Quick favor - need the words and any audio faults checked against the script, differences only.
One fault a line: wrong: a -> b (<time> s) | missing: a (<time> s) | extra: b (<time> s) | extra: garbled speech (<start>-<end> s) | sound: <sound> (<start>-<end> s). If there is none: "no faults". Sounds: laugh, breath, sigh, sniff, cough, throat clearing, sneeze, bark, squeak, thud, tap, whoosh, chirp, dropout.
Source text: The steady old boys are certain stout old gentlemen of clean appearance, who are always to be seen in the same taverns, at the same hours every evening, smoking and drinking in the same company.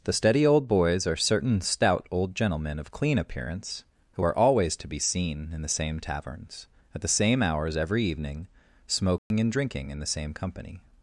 sound: dropout (9.2-9.3 s)